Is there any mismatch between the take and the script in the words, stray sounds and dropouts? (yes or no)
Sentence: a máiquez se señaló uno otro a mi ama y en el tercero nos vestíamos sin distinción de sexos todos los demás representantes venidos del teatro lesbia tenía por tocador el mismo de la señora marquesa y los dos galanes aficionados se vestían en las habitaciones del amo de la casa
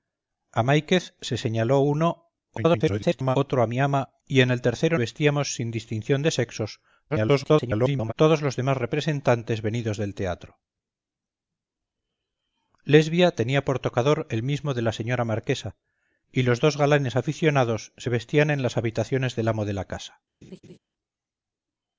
yes